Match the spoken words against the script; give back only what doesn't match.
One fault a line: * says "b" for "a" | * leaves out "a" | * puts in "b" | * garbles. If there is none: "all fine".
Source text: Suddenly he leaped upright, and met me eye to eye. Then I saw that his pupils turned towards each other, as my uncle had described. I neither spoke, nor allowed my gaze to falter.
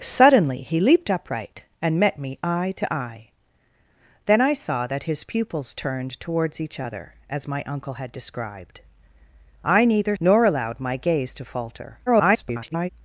* leaves out "spoke"
* garbles